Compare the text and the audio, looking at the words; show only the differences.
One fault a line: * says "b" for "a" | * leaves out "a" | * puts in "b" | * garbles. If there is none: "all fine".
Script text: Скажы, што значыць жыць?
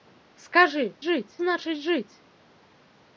* says "жыць" for "што"